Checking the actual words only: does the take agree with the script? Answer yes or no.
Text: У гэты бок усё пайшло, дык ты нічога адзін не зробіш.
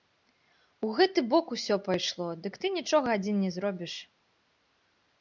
yes